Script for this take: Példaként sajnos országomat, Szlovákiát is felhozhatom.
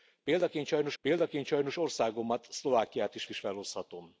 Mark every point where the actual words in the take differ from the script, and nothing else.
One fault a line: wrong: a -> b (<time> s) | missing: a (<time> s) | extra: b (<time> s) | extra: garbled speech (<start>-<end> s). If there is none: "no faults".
extra: példaként sajnos (1.0 s)
extra: is (3.3 s)